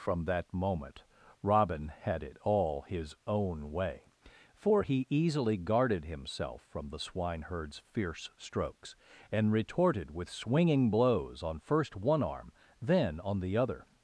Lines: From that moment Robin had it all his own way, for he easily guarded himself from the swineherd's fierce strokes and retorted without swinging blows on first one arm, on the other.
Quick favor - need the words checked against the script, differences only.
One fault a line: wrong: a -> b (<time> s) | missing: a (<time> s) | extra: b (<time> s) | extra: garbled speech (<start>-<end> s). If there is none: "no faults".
wrong: without -> with (10.1 s)
extra: then (12.8 s)